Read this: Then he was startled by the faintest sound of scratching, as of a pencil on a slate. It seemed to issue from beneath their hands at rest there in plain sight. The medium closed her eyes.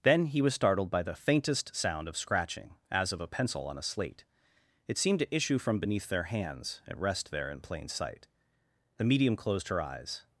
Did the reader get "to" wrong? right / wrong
right